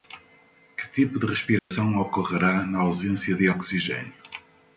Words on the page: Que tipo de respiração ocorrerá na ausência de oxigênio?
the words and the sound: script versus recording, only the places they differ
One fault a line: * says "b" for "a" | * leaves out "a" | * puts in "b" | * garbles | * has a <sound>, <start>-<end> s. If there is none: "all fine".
* has a dropout, 1.6-1.7 s